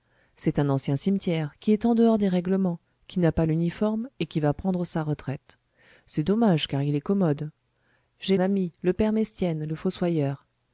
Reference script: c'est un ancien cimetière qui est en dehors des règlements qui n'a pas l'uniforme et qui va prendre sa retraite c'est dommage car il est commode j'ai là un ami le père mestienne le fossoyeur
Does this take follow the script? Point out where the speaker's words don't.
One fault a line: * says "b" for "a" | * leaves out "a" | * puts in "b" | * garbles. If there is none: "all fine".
* leaves out "là un"